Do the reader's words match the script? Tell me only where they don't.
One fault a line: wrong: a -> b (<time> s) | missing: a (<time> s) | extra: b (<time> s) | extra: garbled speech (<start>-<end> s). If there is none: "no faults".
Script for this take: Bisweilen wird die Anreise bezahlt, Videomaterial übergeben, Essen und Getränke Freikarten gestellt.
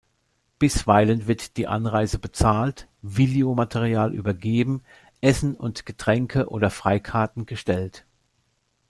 extra: oder (6.5 s)